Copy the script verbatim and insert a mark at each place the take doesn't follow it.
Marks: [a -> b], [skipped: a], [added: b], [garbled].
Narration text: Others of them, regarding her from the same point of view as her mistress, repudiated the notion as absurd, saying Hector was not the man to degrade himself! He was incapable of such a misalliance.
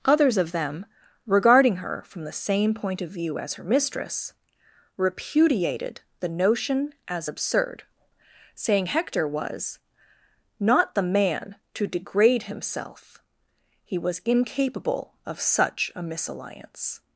Others of them, regarding her from the same point of view as her mistress, repudiated the notion as absurd, saying Hector was not the man to degrade himself! He was incapable of such a misalliance.